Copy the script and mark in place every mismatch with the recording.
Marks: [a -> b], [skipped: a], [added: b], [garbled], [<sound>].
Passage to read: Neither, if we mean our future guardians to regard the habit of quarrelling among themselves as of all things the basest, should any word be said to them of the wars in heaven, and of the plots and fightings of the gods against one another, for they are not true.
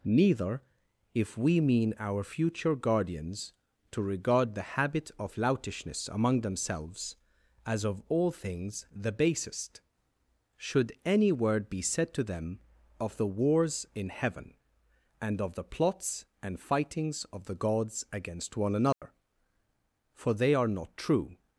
Neither, if we mean our future guardians to regard the habit of [quarrelling -> loutishness] among themselves as of all things the basest, should any word be said to them of the wars in heaven, and of the plots and fightings of the gods against one another, [dropout] for they are not true.